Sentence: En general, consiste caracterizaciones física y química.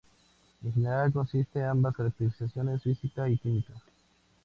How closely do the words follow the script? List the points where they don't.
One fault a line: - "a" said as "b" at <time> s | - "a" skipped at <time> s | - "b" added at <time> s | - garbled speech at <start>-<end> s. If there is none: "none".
- "ambas" added at 1.6 s